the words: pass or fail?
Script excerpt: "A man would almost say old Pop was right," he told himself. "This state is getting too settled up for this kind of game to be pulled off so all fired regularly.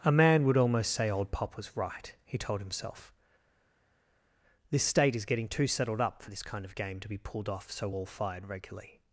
pass